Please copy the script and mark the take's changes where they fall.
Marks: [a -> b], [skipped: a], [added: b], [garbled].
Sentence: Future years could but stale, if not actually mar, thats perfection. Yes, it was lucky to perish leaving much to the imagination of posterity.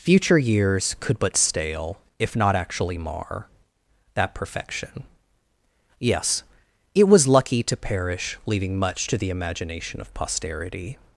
Future years could but stale, if not actually mar, [thats -> that] perfection. Yes, it was lucky to perish leaving much to the imagination of posterity.